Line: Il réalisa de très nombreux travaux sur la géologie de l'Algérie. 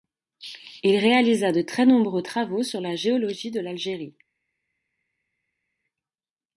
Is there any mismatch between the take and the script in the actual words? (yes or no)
no